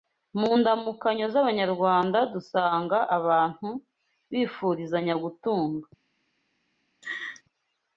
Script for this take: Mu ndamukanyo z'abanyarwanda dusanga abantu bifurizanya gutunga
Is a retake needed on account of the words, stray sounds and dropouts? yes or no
yes